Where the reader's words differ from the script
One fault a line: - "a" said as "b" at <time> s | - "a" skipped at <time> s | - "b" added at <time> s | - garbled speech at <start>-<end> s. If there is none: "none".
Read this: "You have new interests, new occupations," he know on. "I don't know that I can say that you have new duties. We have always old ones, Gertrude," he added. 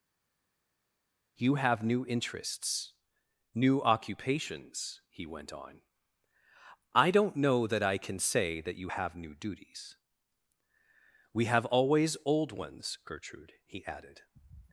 - "know" said as "went" at 5.3 s